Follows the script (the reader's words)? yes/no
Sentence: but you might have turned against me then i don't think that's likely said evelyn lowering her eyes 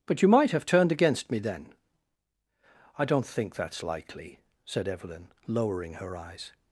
yes